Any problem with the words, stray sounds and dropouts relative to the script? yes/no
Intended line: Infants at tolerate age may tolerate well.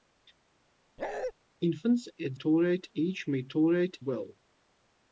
yes